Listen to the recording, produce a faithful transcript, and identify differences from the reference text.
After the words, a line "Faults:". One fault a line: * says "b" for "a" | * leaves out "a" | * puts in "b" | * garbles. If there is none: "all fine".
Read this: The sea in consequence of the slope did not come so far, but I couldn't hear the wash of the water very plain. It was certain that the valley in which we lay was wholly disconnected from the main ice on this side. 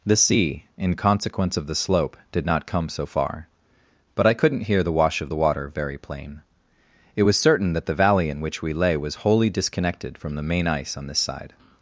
The sea in consequence of the slope did not come so far, but I couldn't hear the wash of the water very plain. It was certain that the valley in which we lay was wholly disconnected from the main ice on this side.
Faults:
all fine